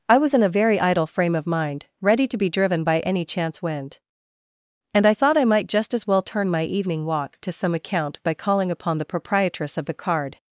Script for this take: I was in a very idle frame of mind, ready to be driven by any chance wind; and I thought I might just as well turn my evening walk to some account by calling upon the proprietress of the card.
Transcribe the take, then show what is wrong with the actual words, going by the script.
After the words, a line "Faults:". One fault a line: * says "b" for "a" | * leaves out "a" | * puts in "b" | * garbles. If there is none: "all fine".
I was in a very idle frame of mind, ready to be driven by any chance wind; and I thought I might just as well turn my evening walk to some account by calling upon the proprietress of the card.
Faults:
all fine